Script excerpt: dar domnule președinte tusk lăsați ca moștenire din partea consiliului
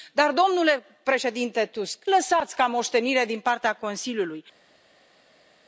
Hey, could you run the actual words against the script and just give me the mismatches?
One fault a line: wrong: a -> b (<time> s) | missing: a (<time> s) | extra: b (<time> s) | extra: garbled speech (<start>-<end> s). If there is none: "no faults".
no faults